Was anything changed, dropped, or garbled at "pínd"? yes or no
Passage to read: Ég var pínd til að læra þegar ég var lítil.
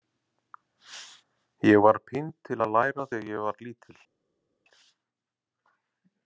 no